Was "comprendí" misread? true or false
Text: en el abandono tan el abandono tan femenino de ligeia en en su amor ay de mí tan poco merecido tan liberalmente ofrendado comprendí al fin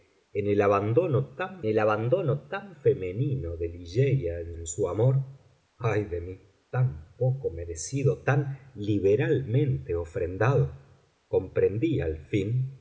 false